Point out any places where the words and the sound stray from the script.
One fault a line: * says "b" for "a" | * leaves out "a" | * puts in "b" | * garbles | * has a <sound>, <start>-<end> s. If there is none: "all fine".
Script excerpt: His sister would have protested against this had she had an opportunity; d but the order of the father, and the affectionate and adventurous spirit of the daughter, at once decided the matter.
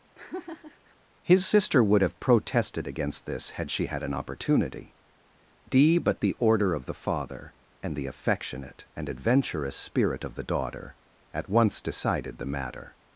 * has a laugh, 0.1-1.0 s